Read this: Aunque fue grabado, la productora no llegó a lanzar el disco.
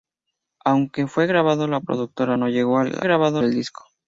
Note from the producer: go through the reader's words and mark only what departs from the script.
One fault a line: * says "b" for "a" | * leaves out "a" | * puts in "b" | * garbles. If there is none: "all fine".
* says "grabado" for "lanzar"